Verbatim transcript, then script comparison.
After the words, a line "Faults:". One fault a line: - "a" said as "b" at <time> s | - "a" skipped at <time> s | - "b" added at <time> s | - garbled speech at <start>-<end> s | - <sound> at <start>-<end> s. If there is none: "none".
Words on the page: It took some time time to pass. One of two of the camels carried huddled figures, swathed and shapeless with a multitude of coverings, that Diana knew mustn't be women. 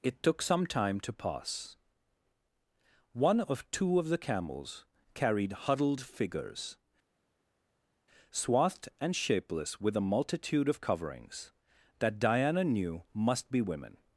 It took some time to pass. One of two of the camels carried huddled figures, swathed and shapeless with a multitude of coverings, that Diana knew must be women.
Faults:
- "time" skipped at 1.0 s
- "mustn't" said as "must" at 13.1 s